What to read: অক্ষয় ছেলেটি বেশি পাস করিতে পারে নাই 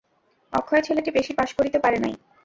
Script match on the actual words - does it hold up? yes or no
yes